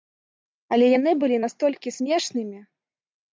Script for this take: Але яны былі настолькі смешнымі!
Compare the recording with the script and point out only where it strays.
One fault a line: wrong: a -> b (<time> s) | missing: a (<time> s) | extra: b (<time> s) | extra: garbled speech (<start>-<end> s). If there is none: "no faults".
no faults